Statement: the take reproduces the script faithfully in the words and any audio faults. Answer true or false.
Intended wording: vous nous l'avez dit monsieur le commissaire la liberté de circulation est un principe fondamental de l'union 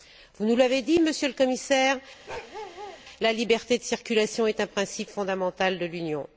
false